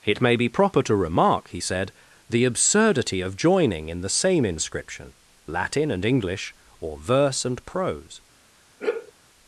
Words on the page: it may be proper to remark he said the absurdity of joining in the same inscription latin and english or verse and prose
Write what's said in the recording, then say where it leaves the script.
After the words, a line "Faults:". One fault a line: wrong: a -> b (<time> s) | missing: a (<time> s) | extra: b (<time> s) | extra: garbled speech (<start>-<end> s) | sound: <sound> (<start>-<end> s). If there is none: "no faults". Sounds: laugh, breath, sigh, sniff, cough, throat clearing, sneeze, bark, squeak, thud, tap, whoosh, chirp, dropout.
it may be proper to remark he said the absurdity of joining in the same inscription latin and english or verse and prose
Faults:
sound: sigh (8.8-9.1 s)